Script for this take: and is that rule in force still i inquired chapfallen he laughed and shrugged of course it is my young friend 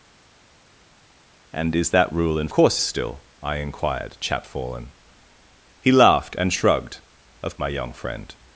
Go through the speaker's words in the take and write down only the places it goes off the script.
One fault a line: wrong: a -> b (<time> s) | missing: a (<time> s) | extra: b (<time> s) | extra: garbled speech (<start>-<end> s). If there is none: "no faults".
wrong: force -> course (2.5 s)
missing: course it is (7.5 s)